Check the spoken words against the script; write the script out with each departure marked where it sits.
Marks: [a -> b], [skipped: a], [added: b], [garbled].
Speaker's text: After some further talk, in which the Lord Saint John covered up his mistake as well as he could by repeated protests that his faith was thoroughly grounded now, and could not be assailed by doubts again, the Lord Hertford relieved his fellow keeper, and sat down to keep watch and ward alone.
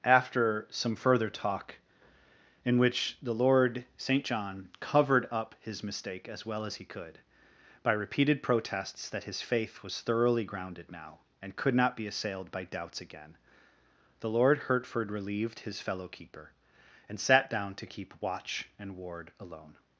After some further talk, in which the Lord Saint John covered up his mistake as well as he could by repeated protests that his faith was thoroughly grounded now, and could not be assailed by doubts again, the Lord Hertford relieved his fellow keeper, and sat down to keep watch and ward alone.